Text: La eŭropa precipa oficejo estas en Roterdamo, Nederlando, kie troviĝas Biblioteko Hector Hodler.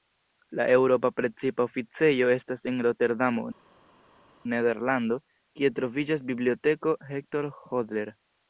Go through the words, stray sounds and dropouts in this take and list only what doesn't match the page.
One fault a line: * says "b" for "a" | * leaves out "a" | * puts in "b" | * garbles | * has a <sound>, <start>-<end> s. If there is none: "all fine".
all fine